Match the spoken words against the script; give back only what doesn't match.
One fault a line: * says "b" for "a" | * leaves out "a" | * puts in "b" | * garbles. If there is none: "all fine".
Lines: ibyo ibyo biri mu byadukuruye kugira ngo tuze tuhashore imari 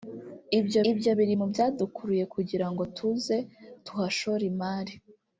all fine